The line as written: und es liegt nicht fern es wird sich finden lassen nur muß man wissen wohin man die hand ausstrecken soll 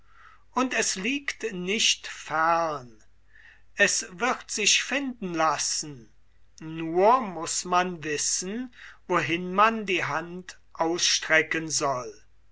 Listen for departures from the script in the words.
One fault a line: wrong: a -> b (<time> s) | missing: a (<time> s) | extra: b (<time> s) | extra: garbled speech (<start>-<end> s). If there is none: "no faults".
no faults